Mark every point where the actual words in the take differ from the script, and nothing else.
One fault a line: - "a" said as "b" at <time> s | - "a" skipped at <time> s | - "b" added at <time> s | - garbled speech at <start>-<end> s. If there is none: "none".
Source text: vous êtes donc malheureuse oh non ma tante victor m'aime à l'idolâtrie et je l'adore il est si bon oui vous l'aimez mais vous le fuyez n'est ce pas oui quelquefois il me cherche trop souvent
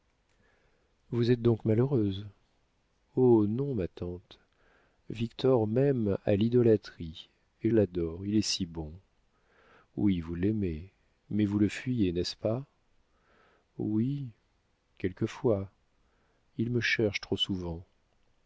- "je" skipped at 7.7 s